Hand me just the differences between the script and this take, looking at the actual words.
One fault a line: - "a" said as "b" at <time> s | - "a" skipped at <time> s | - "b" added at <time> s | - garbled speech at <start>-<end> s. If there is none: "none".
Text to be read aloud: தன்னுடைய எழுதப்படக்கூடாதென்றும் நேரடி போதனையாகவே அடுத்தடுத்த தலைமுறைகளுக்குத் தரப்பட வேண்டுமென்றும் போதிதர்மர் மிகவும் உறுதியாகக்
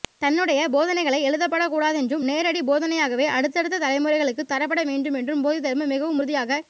- "போதனைகள்" added at 0.7 s